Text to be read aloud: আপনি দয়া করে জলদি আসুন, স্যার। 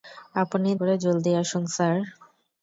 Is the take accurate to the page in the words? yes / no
no